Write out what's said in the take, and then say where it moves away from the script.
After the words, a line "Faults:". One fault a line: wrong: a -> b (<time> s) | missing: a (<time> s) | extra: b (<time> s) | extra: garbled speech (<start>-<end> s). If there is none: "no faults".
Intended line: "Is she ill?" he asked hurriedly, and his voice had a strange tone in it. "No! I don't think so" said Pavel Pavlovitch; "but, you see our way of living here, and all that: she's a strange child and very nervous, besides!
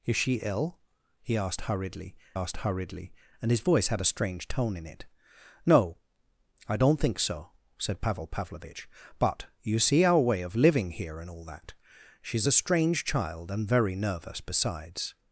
"Is she ill?" he asked hurriedly asked hurriedly, and his voice had a strange tone in it. "No! I don't think so" said Pavel Pavlovitch; "but, you see our way of living here, and all that: she's a strange child and very nervous, besides!
Faults:
extra: asked hurriedly (2.3 s)